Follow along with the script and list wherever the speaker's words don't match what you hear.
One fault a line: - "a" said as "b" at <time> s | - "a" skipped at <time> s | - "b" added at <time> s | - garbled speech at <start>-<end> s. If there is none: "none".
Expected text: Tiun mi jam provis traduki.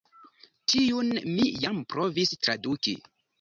none